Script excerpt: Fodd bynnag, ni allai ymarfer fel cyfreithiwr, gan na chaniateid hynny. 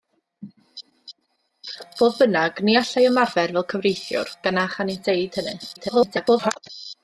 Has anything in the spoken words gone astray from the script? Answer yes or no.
yes